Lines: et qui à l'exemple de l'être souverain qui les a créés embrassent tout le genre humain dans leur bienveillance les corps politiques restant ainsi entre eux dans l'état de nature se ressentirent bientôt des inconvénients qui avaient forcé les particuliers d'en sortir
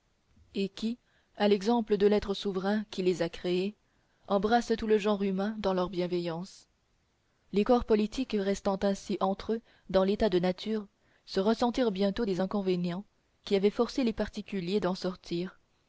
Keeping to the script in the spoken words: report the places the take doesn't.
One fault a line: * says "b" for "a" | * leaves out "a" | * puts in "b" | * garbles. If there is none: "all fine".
all fine